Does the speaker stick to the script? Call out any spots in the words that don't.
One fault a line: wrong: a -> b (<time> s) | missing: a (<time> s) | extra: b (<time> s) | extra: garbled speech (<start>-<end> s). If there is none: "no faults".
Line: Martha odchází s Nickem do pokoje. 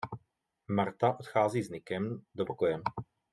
no faults